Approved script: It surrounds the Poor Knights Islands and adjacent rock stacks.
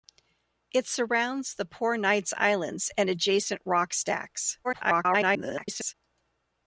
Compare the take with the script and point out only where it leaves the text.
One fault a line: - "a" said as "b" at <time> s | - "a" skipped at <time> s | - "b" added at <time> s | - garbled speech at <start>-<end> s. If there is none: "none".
- garbled speech at 4.6-5.9 s